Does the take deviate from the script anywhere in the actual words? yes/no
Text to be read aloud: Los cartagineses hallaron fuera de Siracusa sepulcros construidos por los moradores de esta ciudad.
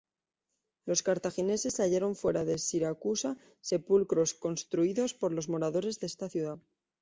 no